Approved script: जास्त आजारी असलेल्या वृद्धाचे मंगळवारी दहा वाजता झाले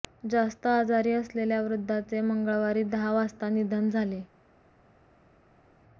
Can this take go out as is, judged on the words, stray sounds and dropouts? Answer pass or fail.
fail